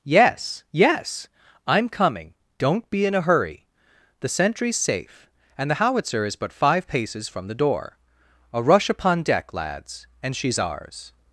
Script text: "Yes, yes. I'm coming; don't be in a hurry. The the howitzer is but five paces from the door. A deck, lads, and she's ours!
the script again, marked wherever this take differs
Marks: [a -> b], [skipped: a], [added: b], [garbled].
"Yes, yes. I'm coming; don't be in a hurry. The [added: sentry's safe and] the howitzer is but five paces from the door. A [added: rush upon] deck, lads, and she's ours!